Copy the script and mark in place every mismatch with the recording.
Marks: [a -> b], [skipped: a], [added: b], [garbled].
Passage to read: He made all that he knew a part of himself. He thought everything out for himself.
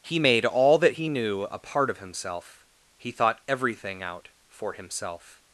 He made all that he knew a part of himself. He thought everything out for himself.